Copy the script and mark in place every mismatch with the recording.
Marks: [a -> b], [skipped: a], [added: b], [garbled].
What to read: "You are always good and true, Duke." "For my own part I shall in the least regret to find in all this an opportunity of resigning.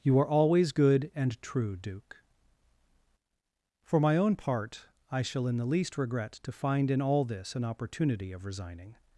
"You are always good and true, Duke." "For my own part I shall in the least regret to find in all this an opportunity of resigning.